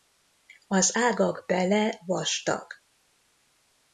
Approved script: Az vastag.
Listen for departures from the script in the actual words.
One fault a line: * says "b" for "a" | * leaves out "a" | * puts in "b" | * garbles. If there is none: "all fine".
* puts in "ágak bele"